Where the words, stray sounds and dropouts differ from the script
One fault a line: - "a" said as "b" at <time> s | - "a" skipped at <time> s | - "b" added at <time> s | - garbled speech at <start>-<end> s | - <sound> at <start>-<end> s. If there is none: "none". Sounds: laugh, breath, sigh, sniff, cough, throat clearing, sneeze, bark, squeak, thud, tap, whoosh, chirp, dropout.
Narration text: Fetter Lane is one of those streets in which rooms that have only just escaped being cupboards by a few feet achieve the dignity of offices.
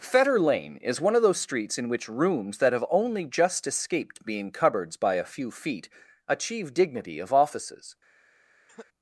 - "the" skipped at 6.7 s
- cough at 8.7-8.9 s